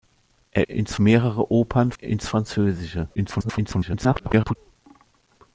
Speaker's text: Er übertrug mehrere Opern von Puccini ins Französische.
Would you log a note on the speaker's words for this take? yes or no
yes